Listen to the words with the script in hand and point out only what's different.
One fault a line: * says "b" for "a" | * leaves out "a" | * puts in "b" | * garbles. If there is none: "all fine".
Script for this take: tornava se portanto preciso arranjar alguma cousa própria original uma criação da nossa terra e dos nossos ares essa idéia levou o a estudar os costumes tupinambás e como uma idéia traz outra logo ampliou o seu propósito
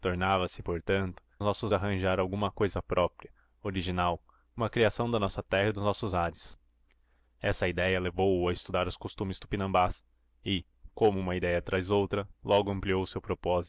* says "nossos" for "preciso"